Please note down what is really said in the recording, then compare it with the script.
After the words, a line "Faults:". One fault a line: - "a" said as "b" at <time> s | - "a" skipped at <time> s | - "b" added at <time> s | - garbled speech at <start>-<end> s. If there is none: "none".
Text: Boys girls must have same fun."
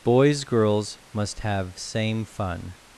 Boys girls must have same fun."
Faults:
none